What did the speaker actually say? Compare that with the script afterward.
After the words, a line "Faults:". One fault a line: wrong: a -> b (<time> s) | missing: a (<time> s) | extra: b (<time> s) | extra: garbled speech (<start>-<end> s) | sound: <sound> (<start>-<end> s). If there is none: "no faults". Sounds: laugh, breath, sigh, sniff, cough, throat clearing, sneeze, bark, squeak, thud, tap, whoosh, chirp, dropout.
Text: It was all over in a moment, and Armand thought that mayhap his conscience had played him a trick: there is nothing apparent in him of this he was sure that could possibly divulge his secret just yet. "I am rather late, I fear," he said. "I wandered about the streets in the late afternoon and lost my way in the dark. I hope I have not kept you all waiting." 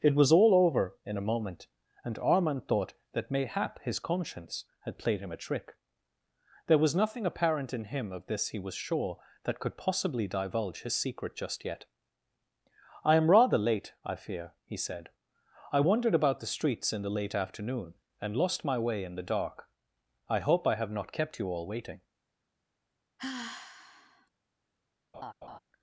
It was all over in a moment, and Armand thought that mayhap his conscience had played him a trick: there was nothing apparent in him of this he was sure that could possibly divulge his secret just yet. "I am rather late, I fear," he said. "I wandered about the streets in the late afternoon and lost my way in the dark. I hope I have not kept you all waiting."
Faults:
wrong: is -> was (6.8 s)
sound: sigh (23.2-24.3 s)
sound: laugh (25.1-25.6 s)